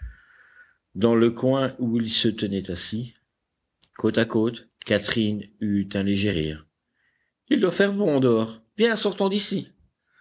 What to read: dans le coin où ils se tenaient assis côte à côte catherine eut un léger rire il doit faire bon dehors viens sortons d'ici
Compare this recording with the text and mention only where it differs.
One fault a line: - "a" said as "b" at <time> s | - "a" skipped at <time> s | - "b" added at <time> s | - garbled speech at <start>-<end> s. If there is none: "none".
none